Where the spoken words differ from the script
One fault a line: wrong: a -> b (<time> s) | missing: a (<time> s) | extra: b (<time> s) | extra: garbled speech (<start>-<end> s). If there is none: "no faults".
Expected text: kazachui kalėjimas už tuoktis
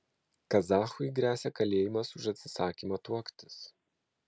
extra: gresia (1.2 s)
extra: atsisakymą (2.3 s)